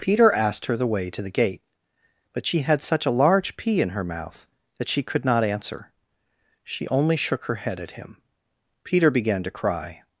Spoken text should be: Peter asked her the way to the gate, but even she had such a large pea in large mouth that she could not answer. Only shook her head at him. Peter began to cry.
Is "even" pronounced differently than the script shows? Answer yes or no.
yes